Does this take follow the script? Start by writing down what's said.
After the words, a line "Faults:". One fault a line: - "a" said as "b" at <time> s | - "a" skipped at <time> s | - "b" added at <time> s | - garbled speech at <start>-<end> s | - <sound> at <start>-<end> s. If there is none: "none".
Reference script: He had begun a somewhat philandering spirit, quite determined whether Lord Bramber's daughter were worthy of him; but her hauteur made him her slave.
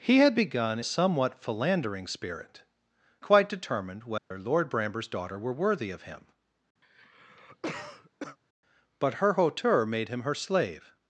He had begun a somewhat philandering spirit, quite determined whether Lord Bramber's daughter were worthy of him; but her hauteur made him her slave.
Faults:
- dropout at 4.2-4.3 s
- cough at 6.8-8.4 s